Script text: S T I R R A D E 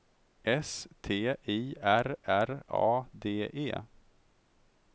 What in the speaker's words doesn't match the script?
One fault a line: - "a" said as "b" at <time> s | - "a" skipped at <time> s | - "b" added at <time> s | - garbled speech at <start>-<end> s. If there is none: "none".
none